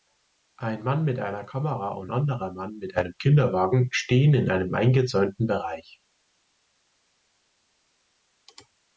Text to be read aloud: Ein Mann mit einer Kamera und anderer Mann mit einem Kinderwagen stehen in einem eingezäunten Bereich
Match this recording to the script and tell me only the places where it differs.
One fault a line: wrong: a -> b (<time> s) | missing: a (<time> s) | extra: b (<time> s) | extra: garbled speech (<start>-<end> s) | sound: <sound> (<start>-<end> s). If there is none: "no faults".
no faults